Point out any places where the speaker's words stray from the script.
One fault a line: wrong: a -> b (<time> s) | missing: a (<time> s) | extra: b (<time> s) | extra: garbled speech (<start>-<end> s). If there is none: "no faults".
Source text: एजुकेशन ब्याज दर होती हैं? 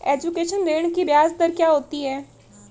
extra: ऋृण की (0.7 s)
extra: क्या (1.5 s)